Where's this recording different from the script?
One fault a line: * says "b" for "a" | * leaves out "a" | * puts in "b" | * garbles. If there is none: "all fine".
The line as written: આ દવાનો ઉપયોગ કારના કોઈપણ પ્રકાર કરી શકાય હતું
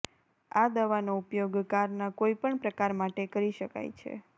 * puts in "માટે"
* says "છે" for "હતું"